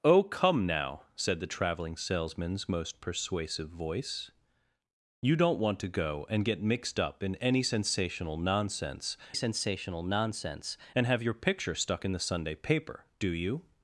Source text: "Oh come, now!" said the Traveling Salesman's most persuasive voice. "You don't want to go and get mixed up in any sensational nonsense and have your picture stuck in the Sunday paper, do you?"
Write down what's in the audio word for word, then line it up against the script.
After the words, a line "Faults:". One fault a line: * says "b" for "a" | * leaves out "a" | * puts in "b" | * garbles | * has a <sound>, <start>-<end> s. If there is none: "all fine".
"Oh come, now!" said the Traveling Salesman's most persuasive voice. "You don't want to go and get mixed up in any sensational nonsense sensational nonsense and have your picture stuck in the Sunday paper, do you?"
Faults:
* puts in "sensational nonsense"